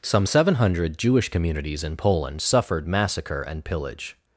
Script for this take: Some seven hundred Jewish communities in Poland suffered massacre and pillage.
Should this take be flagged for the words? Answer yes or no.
no